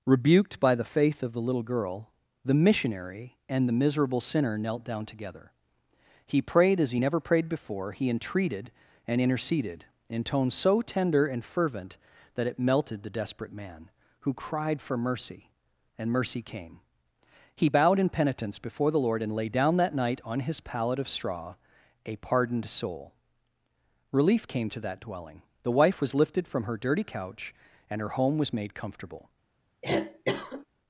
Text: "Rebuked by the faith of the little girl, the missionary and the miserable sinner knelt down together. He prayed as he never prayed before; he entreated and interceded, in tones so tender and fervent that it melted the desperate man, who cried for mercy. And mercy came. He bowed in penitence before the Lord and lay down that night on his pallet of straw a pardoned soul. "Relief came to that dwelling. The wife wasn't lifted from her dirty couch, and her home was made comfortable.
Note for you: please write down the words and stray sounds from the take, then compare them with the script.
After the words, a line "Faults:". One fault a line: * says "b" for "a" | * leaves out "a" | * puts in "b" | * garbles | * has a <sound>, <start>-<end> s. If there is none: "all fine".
"Rebuked by the faith of the little girl, the missionary and the miserable sinner knelt down together. He prayed as he never prayed before; he entreated and interceded, in tones so tender and fervent that it melted the desperate man, who cried for mercy. And mercy came. He bowed in penitence before the Lord and lay down that night on his pallet of straw a pardoned soul. "Relief came to that dwelling. The wife was lifted from her dirty couch, and her home was made comfortable.
Faults:
* says "was" for "wasn't"
* has a cough, 29.8-30.7 s